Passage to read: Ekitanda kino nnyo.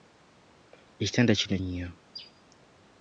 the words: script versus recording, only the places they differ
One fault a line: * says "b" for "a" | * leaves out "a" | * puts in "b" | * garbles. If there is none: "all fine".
all fine